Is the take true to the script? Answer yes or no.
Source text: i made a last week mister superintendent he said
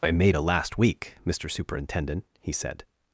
yes